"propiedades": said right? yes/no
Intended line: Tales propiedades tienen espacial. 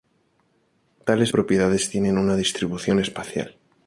yes